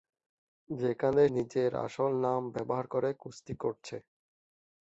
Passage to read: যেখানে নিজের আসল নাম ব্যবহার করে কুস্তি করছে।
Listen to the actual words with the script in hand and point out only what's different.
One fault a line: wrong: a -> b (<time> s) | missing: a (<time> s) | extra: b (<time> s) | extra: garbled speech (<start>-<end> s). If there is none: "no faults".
no faults